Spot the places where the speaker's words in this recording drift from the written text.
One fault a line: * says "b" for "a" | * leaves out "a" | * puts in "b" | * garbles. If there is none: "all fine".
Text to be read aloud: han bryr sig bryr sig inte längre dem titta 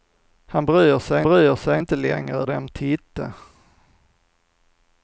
all fine